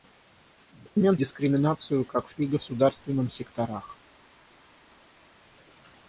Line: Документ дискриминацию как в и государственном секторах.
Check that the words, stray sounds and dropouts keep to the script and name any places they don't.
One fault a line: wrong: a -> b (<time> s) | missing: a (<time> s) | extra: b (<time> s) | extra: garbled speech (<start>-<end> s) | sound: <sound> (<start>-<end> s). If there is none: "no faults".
no faults